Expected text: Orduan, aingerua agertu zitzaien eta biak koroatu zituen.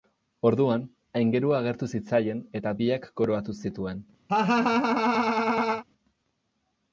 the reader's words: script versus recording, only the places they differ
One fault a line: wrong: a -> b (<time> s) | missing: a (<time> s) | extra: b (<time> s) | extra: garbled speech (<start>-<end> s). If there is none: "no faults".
no faults